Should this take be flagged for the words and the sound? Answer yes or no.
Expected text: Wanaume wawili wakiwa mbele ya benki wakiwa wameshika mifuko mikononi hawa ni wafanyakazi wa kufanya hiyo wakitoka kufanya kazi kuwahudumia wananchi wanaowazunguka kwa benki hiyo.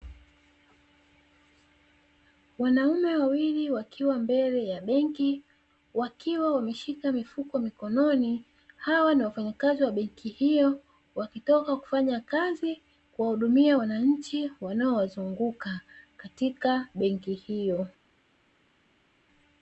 yes